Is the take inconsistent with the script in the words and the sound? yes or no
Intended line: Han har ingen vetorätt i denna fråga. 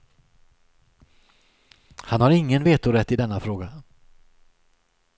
no